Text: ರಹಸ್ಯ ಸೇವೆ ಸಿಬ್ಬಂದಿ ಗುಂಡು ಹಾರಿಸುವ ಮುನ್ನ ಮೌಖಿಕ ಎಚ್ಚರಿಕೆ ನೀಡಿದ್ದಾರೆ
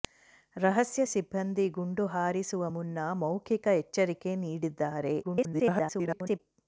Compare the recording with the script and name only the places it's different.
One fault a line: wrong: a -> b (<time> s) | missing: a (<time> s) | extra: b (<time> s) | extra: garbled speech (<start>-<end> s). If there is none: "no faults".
missing: ಸೇವೆ (1.0 s)
extra: garbled speech (5.2-6.4 s)